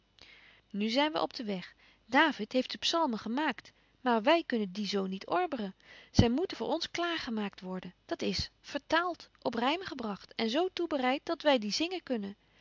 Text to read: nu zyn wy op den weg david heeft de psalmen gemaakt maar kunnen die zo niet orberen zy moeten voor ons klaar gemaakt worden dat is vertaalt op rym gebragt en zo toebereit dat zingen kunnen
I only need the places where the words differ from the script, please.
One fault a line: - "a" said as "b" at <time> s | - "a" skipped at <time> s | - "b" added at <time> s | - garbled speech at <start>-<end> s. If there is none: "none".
- "wy" added at 4.2 s
- "wy die" added at 11.4 s